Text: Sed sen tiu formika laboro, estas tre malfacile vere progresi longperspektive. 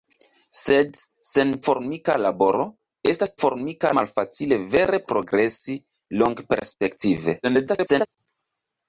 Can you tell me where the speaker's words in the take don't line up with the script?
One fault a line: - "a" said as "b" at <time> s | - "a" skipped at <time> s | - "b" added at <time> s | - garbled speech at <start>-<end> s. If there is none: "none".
- "tiu" skipped at 1.5 s
- "tre" said as "formika" at 3.4 s
- garbled speech at 7.4-8.1 s